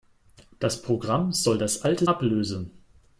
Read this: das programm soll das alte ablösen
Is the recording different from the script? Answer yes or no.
no